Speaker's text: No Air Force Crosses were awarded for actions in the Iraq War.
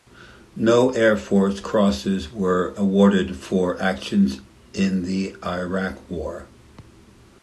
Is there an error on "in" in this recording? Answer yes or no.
no